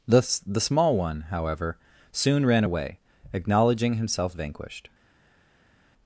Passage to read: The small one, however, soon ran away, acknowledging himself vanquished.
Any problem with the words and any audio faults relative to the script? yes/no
yes